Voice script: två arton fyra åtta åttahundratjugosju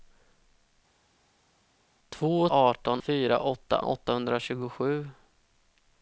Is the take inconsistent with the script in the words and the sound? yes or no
no